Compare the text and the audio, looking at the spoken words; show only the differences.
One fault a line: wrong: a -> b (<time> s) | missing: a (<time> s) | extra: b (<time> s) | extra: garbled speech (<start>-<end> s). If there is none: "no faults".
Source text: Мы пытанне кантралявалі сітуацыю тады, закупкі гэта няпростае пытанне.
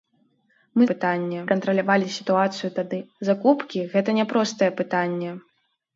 no faults